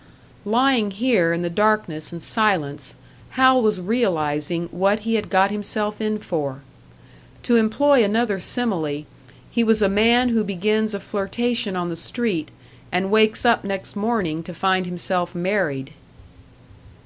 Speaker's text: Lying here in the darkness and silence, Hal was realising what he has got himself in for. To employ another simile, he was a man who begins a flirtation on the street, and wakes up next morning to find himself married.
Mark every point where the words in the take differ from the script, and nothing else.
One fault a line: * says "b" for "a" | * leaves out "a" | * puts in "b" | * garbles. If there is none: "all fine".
* says "had" for "has"